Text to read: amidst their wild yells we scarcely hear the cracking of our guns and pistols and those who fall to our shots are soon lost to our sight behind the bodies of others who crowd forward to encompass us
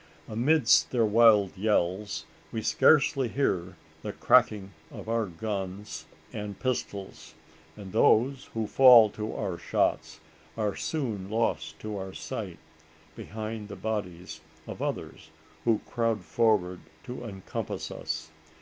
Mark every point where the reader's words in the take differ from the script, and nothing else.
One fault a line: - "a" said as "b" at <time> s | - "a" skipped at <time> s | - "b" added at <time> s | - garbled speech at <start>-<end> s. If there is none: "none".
none